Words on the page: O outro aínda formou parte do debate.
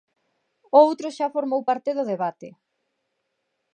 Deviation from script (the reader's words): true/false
true